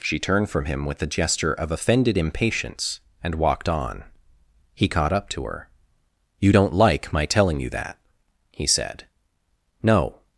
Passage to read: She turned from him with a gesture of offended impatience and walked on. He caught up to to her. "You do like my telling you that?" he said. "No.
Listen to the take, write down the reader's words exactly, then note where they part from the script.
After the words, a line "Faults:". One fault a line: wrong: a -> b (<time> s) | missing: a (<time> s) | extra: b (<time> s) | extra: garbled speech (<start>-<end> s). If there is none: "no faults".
She turned from him with a gesture of offended impatience and walked on. He caught up to her. "You don't like my telling you that?" he said. "No.
Faults:
missing: to (5.5 s)
wrong: do -> don't (6.5 s)